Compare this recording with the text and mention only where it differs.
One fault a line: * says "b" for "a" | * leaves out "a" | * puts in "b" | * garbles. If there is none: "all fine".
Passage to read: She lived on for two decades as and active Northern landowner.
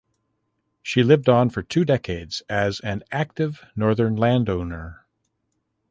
all fine